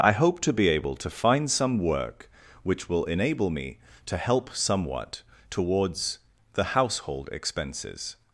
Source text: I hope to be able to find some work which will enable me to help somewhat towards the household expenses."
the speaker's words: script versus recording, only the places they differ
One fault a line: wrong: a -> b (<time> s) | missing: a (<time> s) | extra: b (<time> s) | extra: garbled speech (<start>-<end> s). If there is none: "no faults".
no faults